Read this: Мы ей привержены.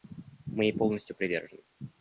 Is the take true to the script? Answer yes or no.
no